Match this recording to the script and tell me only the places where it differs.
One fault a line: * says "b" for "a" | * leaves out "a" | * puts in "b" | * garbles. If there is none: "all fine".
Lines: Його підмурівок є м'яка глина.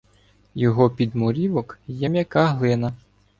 all fine